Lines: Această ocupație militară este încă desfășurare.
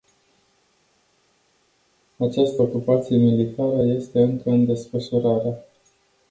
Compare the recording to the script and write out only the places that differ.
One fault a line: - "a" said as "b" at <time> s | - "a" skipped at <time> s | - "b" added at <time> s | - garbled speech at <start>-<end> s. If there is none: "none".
- "în" added at 4.5 s